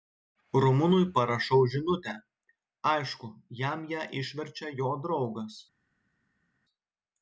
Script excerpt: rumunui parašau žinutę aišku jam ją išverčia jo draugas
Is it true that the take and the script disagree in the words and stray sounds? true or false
false